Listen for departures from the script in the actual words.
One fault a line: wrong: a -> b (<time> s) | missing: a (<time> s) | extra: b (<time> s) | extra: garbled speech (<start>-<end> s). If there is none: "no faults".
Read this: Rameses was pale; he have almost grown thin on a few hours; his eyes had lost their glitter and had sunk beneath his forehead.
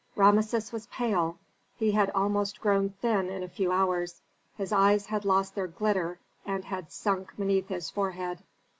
wrong: have -> had (1.9 s)
wrong: on -> in (3.3 s)